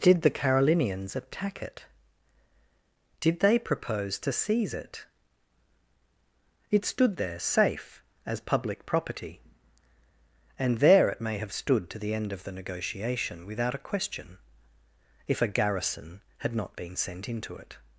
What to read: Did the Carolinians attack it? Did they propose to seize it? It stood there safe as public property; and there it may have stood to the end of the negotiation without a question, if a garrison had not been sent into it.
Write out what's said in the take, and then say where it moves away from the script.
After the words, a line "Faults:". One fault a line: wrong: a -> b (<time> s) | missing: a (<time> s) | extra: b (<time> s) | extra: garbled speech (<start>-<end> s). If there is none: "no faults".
Did the Carolinians attack it? Did they propose to seize it? It stood there safe as public property; and there it may have stood to the end of the negotiation without a question, if a garrison had not been sent into it.
Faults:
no faults